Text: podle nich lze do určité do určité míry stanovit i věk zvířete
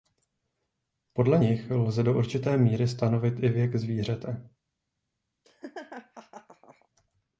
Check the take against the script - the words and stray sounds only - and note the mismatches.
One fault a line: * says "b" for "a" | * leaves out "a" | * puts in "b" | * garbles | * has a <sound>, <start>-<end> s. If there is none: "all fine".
* leaves out "do určité"
* has a laugh, 5.4-6.9 s